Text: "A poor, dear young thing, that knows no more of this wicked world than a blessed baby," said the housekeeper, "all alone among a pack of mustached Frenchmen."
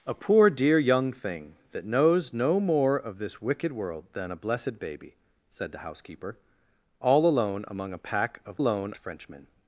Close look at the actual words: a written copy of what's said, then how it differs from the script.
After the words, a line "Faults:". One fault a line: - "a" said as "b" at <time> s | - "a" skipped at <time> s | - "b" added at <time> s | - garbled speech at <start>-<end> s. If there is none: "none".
"A poor, dear young thing, that knows no more of this wicked world than a blessed baby," said the housekeeper, "all alone among a pack of alone Frenchmen."
Faults:
- "mustached" said as "alone" at 8.6 s